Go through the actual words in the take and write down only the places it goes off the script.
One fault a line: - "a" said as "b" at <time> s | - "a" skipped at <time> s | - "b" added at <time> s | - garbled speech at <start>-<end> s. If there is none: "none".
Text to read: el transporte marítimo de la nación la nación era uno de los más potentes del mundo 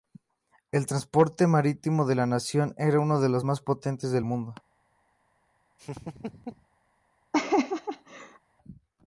- "la nación" skipped at 2.7 s